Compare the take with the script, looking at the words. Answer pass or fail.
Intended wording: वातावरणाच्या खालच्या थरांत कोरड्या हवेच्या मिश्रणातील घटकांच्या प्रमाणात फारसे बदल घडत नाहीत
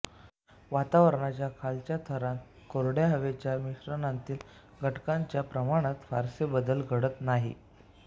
pass